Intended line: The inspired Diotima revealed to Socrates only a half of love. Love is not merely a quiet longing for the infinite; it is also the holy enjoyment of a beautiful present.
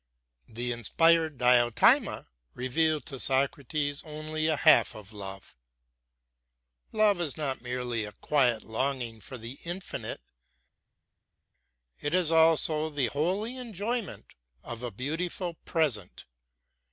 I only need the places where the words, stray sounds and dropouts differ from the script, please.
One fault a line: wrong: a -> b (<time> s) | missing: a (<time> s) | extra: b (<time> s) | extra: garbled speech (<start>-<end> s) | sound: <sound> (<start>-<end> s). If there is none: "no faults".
no faults